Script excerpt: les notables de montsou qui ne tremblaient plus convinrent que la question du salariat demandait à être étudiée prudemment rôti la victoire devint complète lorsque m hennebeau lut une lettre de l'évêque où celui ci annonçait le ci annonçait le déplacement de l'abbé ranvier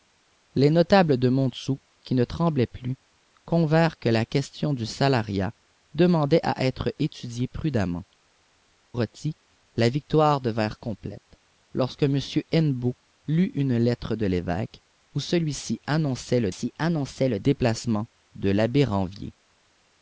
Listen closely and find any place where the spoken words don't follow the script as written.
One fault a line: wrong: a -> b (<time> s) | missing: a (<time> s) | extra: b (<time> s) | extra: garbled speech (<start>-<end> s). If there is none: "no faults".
no faults